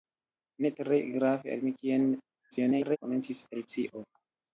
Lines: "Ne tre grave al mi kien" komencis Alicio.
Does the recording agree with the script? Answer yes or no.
no